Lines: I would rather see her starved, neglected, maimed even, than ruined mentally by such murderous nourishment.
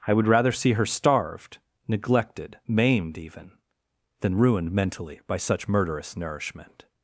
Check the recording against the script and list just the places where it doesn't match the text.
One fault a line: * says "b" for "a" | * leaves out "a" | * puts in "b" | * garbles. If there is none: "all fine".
all fine